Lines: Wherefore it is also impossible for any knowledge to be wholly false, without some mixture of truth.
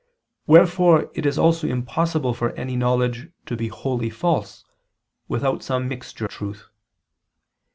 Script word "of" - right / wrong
wrong